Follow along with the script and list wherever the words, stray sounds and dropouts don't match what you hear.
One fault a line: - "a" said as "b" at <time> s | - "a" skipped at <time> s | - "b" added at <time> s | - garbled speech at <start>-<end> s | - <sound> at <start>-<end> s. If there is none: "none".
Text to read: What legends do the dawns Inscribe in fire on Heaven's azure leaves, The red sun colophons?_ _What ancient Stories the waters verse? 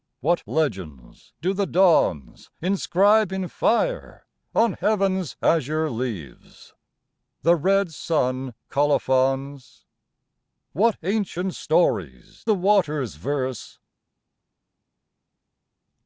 none